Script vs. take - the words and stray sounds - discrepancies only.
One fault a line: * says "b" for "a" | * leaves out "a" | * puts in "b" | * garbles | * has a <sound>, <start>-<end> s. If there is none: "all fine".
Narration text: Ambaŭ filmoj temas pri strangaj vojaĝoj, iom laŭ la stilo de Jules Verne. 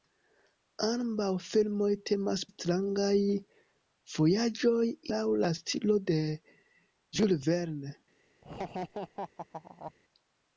* leaves out "pri"
* leaves out "iom"
* has a laugh, 8.4-9.9 s